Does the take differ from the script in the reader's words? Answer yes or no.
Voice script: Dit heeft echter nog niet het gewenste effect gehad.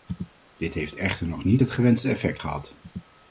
no